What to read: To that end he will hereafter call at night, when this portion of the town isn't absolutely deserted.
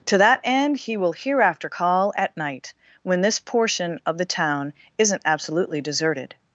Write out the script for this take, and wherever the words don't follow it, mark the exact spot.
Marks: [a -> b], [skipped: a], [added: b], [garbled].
To that end he will hereafter call at night, when this portion of the town isn't absolutely deserted.